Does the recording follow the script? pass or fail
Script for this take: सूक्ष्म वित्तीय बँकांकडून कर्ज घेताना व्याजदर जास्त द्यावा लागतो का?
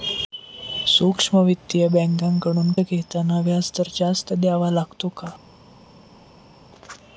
fail